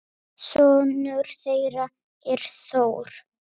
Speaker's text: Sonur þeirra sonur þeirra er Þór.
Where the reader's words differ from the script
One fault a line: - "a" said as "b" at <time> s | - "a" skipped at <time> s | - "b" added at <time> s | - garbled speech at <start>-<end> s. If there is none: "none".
- "sonur þeirra" skipped at 1.9 s